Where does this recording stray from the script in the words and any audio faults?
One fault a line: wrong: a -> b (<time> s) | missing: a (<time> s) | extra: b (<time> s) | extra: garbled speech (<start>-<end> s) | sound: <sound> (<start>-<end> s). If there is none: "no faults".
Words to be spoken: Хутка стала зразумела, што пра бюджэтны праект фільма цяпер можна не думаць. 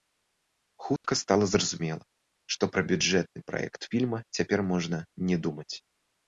sound: dropout (1.0-1.0 s)